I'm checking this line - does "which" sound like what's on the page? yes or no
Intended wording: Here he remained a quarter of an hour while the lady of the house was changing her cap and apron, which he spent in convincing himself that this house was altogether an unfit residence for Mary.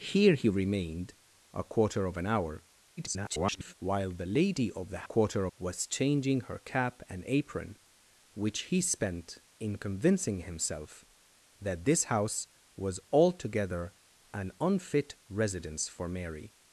yes